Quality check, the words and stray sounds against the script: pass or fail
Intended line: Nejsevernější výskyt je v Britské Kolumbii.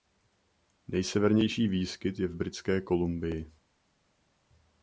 pass